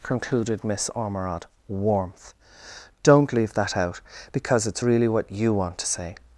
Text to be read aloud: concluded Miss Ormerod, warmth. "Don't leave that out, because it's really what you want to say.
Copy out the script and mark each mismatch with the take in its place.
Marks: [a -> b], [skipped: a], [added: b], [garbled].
concluded Miss Ormerod, warmth. "Don't leave that out, because it's really what you want to say.